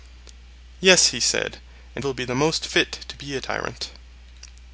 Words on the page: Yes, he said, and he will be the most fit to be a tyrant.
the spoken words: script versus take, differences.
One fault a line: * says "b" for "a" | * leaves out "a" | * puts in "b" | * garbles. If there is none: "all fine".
* leaves out "he"